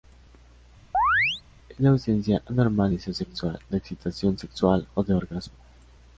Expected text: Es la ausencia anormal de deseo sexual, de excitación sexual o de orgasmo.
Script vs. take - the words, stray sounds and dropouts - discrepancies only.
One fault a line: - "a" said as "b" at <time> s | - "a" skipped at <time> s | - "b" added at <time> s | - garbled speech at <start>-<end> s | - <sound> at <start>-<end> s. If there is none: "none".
- chirp at 0.9-1.4 s
- "de" skipped at 2.9 s